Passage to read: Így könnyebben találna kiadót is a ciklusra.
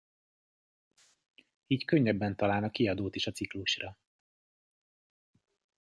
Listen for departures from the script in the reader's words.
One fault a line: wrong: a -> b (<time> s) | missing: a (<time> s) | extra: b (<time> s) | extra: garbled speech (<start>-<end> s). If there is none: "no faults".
no faults